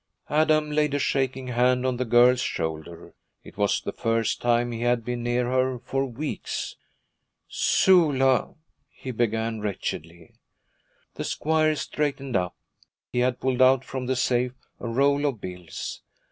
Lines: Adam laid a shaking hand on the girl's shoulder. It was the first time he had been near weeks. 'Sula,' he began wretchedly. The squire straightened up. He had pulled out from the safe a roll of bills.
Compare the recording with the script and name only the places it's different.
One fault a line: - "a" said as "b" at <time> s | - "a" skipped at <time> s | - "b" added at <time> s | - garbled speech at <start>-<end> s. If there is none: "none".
- "her for" added at 5.5 s